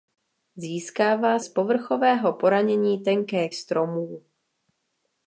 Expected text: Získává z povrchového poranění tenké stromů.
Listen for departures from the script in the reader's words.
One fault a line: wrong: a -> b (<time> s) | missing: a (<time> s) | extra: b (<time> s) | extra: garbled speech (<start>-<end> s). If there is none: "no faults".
no faults